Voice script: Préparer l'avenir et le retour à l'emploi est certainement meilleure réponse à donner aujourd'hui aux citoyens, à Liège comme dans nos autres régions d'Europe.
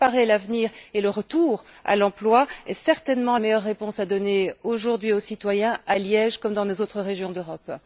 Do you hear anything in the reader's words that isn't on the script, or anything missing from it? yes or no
no